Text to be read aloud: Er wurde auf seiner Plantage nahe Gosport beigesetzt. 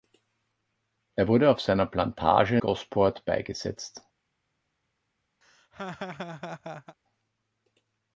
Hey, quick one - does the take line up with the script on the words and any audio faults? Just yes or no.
no